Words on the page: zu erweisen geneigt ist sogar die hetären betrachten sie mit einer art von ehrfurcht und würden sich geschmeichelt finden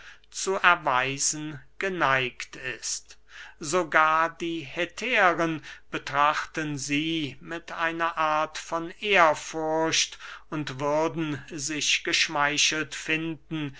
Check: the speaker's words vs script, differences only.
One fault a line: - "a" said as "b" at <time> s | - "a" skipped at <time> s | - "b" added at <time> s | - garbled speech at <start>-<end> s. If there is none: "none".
none